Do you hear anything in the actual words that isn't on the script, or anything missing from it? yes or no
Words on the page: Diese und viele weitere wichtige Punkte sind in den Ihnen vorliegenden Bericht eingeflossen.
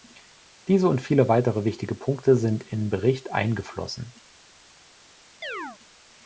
yes